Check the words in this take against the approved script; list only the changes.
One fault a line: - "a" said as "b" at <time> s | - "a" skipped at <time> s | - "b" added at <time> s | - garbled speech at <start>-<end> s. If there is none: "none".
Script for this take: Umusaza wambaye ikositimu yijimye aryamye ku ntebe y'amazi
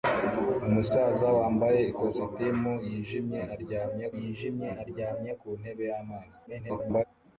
- "yijimye aryamye" added at 4.2 s
- garbled speech at 6.5-7.0 s